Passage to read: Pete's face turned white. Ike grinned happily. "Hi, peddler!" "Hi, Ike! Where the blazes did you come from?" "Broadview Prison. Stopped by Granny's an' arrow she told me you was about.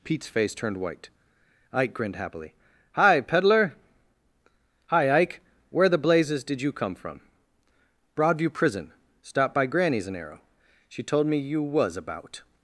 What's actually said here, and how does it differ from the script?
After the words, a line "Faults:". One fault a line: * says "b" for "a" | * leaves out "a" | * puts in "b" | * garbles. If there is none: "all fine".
Pete's face turned white. Ike grinned happily. "Hi, peddler!" "Hi, Ike! Where the blazes did you come from?" "Broadview Prison. Stopped by Granny's an' arrow she told me you was about.
Faults:
all fine